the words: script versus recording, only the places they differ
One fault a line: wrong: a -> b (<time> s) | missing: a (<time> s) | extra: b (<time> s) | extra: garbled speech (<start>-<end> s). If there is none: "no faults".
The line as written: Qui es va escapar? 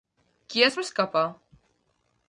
no faults